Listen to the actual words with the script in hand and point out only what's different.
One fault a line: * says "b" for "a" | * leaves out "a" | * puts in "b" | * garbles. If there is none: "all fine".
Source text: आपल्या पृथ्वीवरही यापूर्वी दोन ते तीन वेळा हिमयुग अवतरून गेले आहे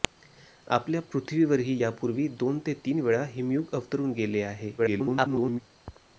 * garbles